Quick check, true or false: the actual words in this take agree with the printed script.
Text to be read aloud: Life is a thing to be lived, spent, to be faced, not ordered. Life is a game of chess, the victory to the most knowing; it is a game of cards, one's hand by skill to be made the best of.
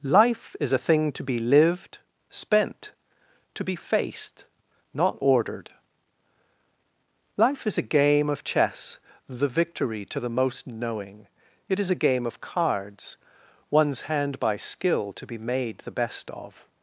true